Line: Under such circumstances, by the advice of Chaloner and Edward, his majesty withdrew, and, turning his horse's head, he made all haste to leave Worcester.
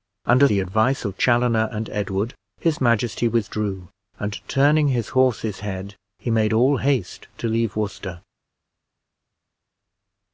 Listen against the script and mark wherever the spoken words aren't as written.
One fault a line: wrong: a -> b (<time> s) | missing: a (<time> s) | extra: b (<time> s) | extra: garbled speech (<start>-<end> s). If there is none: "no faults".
missing: such circumstances by (0.5 s)